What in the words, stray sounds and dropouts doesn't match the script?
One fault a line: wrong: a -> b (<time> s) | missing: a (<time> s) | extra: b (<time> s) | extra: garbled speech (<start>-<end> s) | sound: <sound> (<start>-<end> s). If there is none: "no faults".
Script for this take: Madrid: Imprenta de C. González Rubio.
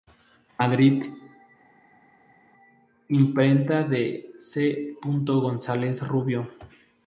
no faults